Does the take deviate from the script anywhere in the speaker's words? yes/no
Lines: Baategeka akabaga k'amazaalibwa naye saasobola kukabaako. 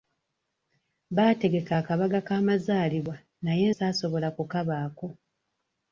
no